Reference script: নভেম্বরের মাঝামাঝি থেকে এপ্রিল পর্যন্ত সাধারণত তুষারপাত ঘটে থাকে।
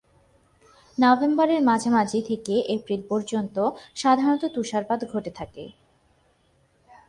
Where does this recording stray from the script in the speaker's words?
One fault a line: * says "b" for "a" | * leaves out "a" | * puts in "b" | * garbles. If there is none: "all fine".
all fine